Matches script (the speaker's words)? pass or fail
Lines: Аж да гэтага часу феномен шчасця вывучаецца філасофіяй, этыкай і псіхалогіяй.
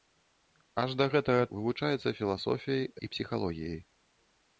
fail